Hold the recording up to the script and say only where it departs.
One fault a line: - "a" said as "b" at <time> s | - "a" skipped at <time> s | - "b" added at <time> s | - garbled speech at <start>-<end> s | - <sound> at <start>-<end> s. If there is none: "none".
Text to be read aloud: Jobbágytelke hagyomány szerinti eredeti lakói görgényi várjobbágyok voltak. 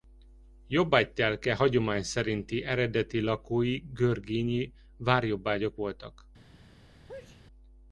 - sneeze at 7.1-7.4 s